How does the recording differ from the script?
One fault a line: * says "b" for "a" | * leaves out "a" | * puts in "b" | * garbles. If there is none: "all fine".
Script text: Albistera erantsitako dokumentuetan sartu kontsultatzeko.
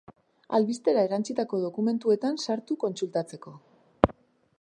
all fine